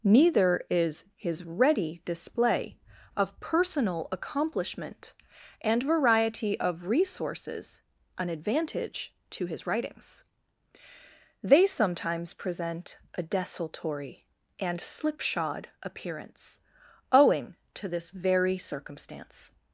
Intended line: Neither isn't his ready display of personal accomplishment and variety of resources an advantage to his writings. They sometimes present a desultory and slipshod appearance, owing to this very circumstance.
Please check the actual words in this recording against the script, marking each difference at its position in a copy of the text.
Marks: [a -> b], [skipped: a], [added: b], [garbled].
Neither [isn't -> is] his ready display of personal accomplishment and variety of resources an advantage to his writings. They sometimes present a desultory and slipshod appearance, owing to this very circumstance.